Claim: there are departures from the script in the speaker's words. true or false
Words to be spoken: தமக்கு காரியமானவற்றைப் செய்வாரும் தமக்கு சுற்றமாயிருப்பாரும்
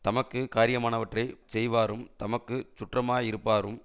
false